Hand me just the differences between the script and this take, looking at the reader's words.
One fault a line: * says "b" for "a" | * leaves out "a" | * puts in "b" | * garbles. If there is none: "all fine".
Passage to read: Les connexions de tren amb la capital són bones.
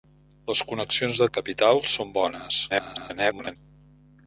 * leaves out "tren amb"
* garbles